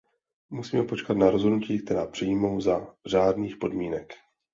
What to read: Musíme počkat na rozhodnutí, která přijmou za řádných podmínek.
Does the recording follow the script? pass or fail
pass